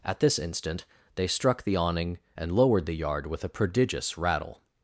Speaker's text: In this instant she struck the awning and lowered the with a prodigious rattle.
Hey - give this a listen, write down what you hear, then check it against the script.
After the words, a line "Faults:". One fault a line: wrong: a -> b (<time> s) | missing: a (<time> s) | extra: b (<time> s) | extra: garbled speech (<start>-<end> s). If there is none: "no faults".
At this instant they struck the awning and lowered the yard with a prodigious rattle.
Faults:
wrong: In -> At (0.0 s)
wrong: she -> they (1.1 s)
extra: yard (2.9 s)